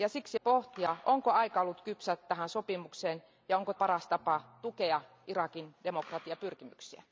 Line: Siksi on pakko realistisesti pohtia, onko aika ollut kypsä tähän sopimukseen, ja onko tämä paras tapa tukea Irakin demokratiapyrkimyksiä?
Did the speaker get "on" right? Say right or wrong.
wrong